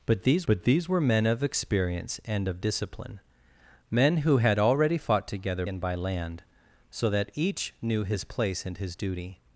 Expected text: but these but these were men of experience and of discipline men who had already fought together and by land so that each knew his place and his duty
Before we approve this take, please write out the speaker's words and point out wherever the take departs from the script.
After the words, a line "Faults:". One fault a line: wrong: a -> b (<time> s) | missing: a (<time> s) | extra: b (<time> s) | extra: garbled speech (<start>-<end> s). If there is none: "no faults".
but these but these were men of experience and of discipline men who had already fought together and by land so that each knew his place and his duty
Faults:
no faults